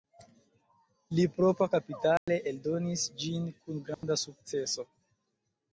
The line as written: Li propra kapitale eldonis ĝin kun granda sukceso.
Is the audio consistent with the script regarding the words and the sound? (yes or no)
no